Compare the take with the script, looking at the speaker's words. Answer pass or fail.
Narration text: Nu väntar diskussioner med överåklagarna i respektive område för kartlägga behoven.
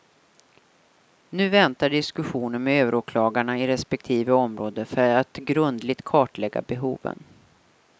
fail